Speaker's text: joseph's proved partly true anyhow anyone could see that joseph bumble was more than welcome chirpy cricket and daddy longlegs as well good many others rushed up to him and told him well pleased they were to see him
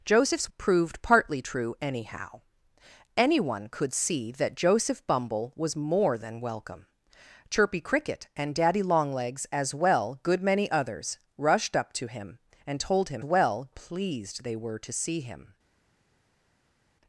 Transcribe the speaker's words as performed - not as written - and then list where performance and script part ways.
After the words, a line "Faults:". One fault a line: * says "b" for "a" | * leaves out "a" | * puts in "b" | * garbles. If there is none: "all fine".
joseph's proved partly true anyhow anyone could see that joseph bumble was more than welcome chirpy cricket and daddy longlegs as well good many others rushed up to him and told him well pleased they were to see him
Faults:
all fine